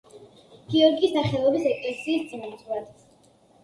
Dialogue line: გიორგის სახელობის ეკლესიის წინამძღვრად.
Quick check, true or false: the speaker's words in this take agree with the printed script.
true